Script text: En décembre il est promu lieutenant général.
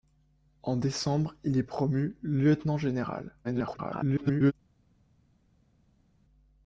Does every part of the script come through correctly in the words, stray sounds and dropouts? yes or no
no